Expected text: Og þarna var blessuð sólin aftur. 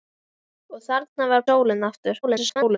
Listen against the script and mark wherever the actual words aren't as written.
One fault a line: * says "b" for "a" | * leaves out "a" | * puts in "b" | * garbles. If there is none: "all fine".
* leaves out "blessuð"
* garbles